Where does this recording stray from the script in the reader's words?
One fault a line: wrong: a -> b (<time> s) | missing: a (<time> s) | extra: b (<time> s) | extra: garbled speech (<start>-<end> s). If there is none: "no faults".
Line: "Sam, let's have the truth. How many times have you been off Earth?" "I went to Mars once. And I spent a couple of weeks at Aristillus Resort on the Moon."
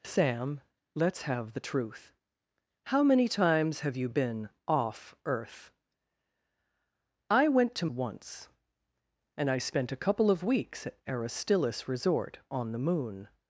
missing: Mars (7.9 s)